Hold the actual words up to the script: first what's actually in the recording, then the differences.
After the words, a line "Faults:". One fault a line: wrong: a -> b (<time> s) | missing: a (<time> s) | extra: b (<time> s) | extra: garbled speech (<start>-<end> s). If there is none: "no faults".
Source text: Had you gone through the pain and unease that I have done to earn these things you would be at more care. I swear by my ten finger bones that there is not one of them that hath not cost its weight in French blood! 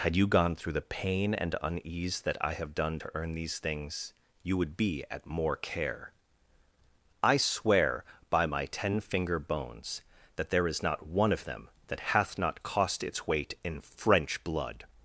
Had you gone through the pain and unease that I have done to earn these things you would be at more care. I swear by my ten finger bones that there is not one of them that hath not cost its weight in French blood!
Faults:
no faults